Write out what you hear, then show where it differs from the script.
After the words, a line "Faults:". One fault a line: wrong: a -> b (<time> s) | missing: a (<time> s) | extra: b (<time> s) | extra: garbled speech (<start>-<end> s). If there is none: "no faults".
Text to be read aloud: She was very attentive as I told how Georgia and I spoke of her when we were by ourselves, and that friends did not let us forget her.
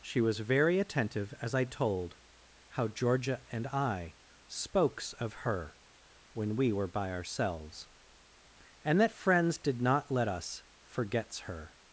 She was very attentive as I told how Georgia and I spokes of her when we were by ourselves, and that friends did not let us forgets her.
Faults:
wrong: spoke -> spokes (4.5 s)
wrong: forget -> forgets (10.8 s)